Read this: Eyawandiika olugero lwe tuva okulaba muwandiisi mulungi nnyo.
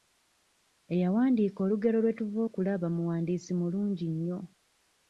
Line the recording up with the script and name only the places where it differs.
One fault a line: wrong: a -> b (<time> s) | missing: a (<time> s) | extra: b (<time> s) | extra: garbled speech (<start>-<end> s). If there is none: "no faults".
no faults